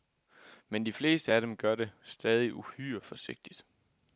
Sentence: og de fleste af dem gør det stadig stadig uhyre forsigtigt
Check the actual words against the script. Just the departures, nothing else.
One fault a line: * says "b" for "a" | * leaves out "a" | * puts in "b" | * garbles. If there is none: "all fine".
* says "men" for "og"
* leaves out "stadig"